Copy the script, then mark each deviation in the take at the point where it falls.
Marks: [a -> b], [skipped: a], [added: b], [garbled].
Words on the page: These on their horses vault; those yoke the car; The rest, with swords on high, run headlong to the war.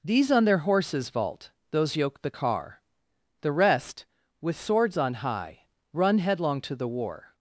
These on their horses vault; those yoke the car; The rest, with swords on high, run headlong to the war.